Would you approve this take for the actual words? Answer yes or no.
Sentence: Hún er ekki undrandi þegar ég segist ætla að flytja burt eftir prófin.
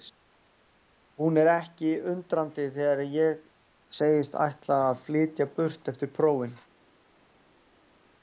yes